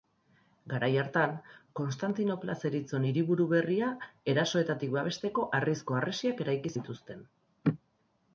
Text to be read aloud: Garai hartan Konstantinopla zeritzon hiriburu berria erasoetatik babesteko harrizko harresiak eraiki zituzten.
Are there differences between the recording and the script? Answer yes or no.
no